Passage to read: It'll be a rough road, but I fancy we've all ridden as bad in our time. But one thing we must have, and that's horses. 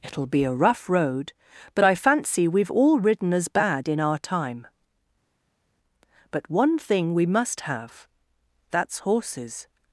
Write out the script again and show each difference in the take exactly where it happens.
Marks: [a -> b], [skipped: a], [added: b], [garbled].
It'll be a rough road, but I fancy we've all ridden as bad in our time. But one thing we must have, [skipped: and] that's horses.